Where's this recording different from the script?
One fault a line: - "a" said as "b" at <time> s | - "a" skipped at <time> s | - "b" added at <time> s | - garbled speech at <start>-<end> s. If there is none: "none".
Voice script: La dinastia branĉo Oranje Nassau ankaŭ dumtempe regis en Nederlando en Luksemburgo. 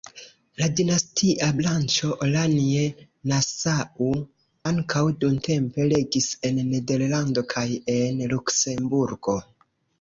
- "kaj" added at 7.6 s